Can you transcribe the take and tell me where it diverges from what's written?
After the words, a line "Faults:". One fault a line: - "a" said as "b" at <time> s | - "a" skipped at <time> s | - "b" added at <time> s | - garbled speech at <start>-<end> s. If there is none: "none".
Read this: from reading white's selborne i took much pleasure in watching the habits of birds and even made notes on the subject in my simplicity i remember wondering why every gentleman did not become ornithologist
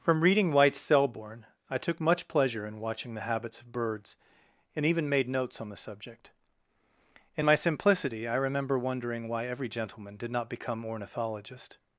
from reading white's selborne i took much pleasure in watching the habits of birds and even made notes on the subject in my simplicity i remember wondering why every gentleman did not become ornithologist
Faults:
none